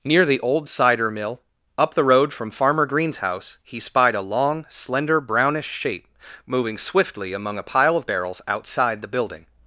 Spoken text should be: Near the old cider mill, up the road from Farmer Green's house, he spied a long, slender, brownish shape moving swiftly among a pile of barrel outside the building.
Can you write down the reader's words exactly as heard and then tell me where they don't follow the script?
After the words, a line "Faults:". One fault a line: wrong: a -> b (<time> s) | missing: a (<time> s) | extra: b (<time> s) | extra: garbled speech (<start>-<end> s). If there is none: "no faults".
Near the old cider mill, up the road from Farmer Green's house, he spied a long, slender, brownish shape moving swiftly among a pile of barrels outside the building.
Faults:
wrong: barrel -> barrels (8.1 s)